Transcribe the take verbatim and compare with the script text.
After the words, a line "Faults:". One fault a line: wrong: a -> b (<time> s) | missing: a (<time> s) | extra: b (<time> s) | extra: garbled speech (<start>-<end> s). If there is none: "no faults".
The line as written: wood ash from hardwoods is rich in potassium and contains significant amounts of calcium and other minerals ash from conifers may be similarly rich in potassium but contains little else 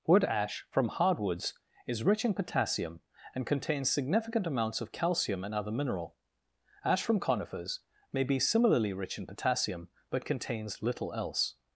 wood ash from hardwoods is rich in potassium and contains significant amounts of calcium and other mineral ash from conifers may be similarly rich in potassium but contains little else
Faults:
wrong: minerals -> mineral (5.7 s)